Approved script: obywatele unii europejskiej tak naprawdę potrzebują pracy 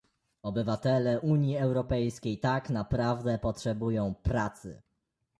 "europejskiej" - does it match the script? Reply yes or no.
yes